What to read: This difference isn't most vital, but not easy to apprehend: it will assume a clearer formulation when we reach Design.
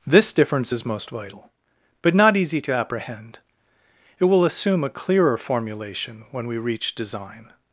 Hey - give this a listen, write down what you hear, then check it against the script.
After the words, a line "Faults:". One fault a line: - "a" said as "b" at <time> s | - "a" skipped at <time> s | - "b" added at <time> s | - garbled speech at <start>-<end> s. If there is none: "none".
This difference is most vital, but not easy to apprehend: it will assume a clearer formulation when we reach Design.
Faults:
- "isn't" said as "is" at 0.7 s